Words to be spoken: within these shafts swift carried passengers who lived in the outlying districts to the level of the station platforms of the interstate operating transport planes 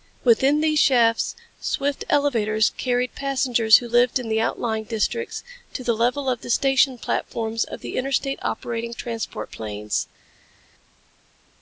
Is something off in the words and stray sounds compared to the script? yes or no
yes